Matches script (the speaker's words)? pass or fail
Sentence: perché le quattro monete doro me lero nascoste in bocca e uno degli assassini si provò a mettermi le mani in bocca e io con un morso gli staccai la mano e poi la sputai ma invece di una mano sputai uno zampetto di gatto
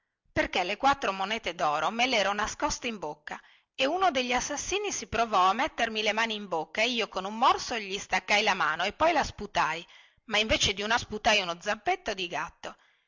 fail